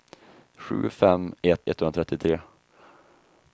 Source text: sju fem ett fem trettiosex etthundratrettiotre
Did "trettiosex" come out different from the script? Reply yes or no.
yes